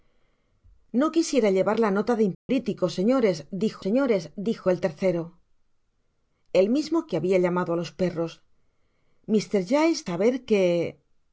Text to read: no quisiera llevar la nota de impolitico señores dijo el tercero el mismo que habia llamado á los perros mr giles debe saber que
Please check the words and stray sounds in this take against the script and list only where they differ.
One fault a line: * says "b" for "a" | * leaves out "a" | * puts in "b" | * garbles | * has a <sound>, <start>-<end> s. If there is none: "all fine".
* has a dropout, 2.3-2.5 s
* puts in "señores dijo"
* leaves out "debe"